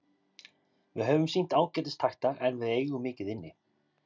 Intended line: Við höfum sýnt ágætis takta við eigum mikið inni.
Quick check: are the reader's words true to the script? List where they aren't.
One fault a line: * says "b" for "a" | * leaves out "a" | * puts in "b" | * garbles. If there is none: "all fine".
* puts in "en"